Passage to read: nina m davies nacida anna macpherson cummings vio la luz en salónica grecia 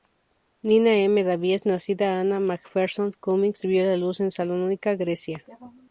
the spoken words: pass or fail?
pass